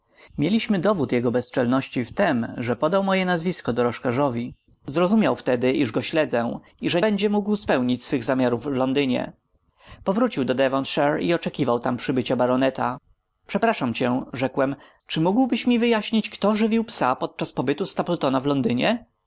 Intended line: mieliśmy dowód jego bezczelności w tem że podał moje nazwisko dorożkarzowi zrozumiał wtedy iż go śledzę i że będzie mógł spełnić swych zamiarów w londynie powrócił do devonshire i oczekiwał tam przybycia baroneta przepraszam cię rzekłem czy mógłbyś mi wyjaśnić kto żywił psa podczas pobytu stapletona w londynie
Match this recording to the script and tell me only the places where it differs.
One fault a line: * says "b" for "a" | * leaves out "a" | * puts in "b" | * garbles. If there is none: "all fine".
all fine